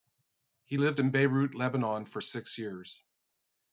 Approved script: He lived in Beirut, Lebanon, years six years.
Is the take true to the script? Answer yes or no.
no